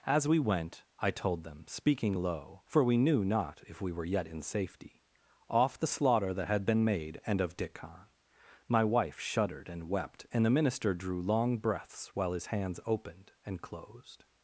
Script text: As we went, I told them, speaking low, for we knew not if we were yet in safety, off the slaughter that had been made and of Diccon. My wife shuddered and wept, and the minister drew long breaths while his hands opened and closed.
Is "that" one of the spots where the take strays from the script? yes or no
no